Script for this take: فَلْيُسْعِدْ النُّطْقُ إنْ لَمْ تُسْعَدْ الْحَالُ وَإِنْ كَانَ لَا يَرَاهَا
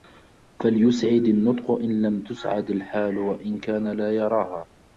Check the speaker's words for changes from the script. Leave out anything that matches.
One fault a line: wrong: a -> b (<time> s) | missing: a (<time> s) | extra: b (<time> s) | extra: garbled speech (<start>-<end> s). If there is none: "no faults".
no faults